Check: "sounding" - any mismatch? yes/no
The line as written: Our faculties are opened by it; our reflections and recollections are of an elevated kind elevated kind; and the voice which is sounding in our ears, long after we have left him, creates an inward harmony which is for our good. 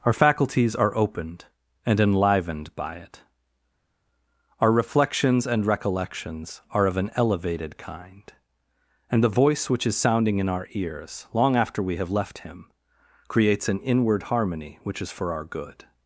no